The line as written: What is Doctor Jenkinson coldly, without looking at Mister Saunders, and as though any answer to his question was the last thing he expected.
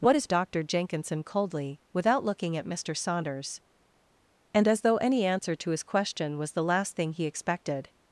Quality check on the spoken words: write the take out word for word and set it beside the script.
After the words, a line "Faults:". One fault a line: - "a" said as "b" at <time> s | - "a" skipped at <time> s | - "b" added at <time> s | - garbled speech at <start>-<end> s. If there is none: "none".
What is Doctor Jenkinson coldly, without looking at Mister Saunders, and as though any answer to his question was the last thing he expected.
Faults:
none